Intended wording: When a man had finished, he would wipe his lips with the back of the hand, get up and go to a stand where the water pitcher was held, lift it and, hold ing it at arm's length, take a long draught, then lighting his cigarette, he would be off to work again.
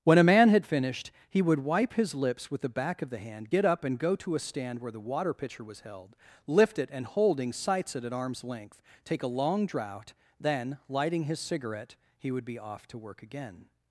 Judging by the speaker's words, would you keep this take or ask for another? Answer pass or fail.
fail